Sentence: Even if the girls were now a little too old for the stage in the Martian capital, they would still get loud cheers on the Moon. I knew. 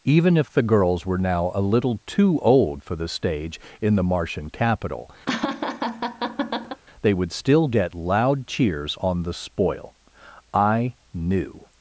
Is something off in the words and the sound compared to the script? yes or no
yes